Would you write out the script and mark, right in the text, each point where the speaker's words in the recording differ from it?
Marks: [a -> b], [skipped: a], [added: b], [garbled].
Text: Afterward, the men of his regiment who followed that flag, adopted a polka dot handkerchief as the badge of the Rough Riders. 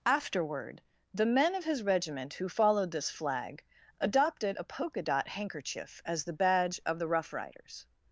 Afterward, the men of his regiment who followed [that -> this] flag, adopted a polka dot handkerchief as the badge of the Rough Riders.